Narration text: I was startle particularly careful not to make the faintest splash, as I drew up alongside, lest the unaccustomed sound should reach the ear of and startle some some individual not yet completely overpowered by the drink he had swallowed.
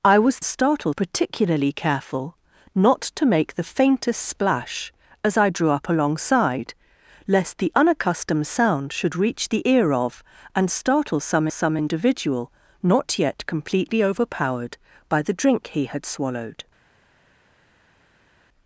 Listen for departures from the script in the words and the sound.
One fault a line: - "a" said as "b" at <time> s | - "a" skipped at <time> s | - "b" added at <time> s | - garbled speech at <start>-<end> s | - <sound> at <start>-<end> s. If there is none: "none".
none